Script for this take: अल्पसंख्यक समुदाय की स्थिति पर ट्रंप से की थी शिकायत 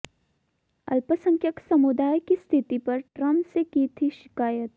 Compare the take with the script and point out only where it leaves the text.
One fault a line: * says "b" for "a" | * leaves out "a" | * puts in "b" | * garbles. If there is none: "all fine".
all fine